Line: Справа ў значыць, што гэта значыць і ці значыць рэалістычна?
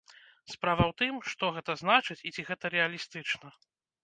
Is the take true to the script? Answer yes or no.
no